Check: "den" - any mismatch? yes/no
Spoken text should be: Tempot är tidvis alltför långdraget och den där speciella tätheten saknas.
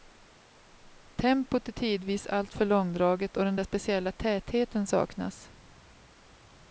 no